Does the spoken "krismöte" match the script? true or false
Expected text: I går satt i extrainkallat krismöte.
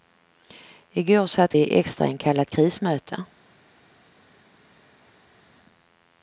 true